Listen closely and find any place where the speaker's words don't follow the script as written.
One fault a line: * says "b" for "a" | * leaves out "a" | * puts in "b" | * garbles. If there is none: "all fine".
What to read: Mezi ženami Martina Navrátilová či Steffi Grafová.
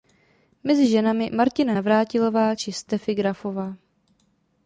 all fine